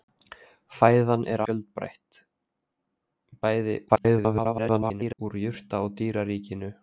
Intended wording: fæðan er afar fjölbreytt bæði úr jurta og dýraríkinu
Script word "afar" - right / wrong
wrong